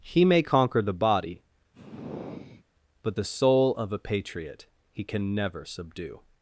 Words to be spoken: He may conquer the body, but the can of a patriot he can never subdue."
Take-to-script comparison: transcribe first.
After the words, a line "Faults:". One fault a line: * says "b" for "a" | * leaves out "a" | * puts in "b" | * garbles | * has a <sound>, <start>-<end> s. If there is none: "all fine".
He may conquer the body, but the soul of a patriot he can never subdue."
Faults:
* has a sigh, 1.7-2.7 s
* says "soul" for "can"